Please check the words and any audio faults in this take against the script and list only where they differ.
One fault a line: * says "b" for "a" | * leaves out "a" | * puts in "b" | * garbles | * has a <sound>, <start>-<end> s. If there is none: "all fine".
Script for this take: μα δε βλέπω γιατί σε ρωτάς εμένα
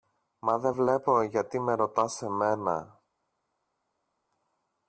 * says "με" for "σε"